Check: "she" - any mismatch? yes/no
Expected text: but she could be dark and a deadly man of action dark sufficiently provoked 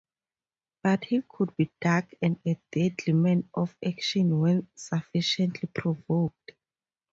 yes